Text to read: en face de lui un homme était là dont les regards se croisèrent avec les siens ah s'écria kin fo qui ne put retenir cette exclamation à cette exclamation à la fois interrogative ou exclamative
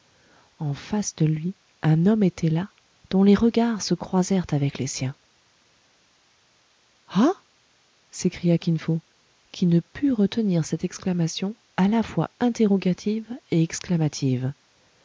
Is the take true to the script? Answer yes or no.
no